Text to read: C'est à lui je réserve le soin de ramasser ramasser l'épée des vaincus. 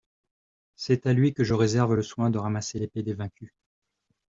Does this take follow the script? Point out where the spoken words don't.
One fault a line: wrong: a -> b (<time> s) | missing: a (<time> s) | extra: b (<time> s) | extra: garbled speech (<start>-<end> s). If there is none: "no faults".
extra: que (1.3 s)
missing: ramasser (2.8 s)